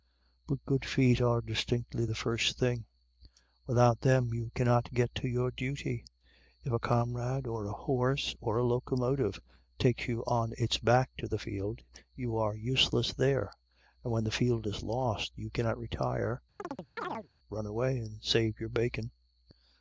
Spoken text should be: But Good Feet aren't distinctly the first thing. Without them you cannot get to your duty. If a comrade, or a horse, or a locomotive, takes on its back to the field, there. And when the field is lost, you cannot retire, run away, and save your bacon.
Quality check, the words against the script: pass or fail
fail